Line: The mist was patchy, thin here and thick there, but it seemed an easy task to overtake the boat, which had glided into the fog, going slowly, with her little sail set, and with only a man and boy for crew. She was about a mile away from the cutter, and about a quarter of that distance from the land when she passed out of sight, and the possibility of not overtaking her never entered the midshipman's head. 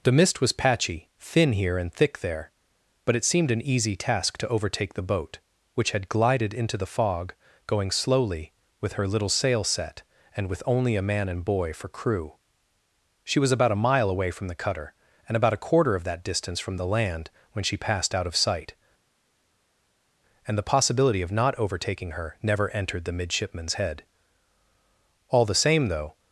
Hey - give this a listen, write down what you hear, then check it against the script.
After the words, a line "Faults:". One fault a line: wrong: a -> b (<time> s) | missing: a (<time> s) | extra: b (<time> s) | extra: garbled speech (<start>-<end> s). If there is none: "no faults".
The mist was patchy, thin here and thick there, but it seemed an easy task to overtake the boat, which had glided into the fog, going slowly, with her little sail set, and with only a man and boy for crew. She was about a mile away from the cutter, and about a quarter of that distance from the land when she passed out of sight, and the possibility of not overtaking her never entered the midshipman's head. All the same, though
Faults:
extra: All the same though (25.3 s)